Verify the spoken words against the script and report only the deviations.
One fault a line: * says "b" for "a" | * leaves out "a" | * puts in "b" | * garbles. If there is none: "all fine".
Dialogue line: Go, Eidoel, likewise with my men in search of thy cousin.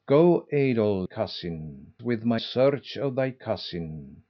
* says "cousin" for "likewise"
* leaves out "men in"